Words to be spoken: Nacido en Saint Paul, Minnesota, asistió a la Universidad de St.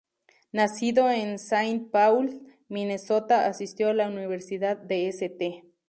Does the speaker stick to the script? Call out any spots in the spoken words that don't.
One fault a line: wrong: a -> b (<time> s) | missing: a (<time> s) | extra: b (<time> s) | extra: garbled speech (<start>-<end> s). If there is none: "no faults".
no faults